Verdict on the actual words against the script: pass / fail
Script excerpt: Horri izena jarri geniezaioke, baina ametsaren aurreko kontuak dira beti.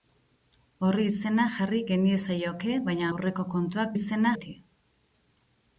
fail